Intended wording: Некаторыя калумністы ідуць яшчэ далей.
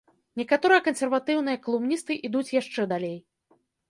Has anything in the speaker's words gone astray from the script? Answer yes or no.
yes